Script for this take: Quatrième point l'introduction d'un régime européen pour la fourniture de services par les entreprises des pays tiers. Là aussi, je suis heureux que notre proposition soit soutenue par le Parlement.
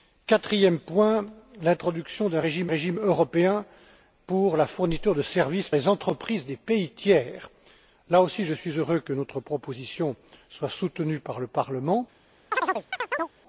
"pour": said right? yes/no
yes